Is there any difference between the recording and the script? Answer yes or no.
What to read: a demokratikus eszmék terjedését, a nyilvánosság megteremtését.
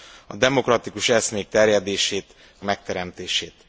yes